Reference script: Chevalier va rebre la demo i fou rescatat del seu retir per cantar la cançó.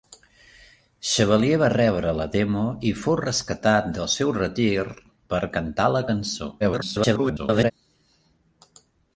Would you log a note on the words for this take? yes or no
yes